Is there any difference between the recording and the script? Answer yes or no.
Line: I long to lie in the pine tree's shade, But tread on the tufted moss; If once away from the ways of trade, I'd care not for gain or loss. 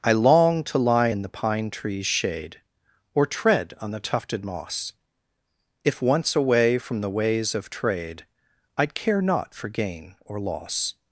yes